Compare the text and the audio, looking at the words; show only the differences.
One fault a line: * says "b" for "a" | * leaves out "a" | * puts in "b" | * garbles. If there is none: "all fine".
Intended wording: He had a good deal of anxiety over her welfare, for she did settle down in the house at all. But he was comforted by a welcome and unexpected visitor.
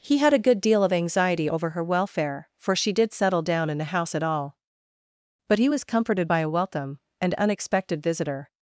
all fine